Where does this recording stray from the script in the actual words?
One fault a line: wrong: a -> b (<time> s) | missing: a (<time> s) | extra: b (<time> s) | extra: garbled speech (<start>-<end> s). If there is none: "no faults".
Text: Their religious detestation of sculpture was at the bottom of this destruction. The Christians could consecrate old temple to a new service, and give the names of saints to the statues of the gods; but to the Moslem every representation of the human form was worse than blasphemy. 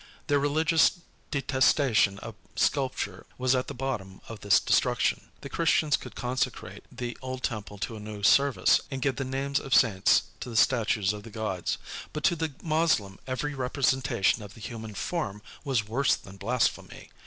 extra: the (6.9 s)